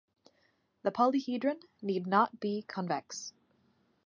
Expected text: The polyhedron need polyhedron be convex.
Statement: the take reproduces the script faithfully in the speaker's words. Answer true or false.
false